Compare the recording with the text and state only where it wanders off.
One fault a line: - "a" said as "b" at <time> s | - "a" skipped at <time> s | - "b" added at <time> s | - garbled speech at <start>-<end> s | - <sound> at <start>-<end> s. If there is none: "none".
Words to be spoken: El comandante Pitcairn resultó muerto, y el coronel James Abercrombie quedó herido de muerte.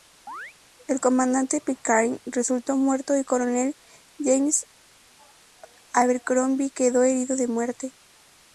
- chirp at 0.3-0.5 s